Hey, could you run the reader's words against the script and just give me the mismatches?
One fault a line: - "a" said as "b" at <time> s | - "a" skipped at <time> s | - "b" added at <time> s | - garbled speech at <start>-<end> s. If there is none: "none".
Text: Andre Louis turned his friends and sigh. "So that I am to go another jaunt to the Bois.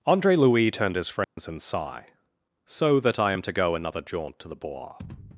none